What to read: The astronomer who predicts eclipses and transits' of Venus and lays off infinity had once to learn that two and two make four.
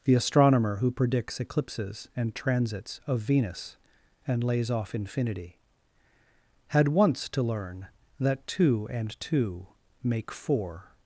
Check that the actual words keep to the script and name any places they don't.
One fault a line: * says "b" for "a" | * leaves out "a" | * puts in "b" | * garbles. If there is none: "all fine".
all fine